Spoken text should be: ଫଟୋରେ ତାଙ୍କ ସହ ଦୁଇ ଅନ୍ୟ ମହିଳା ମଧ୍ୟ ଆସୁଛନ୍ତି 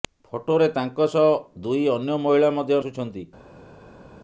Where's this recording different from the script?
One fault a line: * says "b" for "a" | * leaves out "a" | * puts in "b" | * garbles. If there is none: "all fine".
all fine